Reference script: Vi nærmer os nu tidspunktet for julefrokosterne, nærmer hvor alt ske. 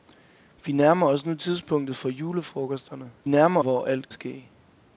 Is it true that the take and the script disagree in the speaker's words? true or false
false